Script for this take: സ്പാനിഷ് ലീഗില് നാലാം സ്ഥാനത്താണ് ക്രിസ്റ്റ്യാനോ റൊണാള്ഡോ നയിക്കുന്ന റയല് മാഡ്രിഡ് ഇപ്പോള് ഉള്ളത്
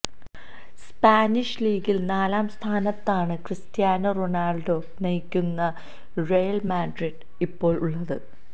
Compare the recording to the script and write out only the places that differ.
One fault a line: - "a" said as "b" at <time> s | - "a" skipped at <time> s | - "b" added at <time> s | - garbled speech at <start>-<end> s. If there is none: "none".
none